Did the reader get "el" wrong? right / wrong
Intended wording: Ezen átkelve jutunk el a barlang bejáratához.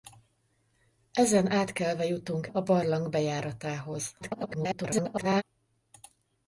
wrong